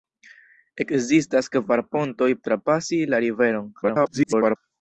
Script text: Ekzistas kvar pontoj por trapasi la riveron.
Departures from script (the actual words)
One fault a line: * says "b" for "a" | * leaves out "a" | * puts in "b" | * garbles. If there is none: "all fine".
* leaves out "por"
* garbles